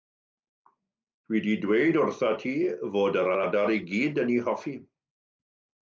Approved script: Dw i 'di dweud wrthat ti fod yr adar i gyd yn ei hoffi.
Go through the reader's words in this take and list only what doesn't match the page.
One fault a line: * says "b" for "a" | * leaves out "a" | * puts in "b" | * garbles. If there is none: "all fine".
* puts in "yr"